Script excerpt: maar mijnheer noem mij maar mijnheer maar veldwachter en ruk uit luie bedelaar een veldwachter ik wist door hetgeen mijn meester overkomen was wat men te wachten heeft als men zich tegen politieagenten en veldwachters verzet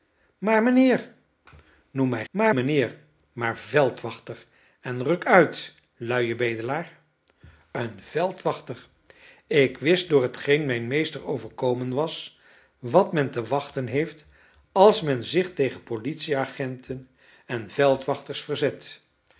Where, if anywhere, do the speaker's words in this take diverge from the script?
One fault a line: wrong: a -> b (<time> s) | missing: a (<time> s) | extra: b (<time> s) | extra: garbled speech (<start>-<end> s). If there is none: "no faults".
no faults